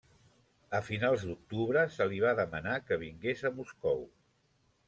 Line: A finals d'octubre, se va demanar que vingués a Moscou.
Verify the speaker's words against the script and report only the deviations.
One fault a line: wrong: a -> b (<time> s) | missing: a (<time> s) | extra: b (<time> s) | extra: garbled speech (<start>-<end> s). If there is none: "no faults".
extra: li (2.1 s)